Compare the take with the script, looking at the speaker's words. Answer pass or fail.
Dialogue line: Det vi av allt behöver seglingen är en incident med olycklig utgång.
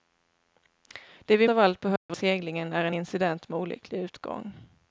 pass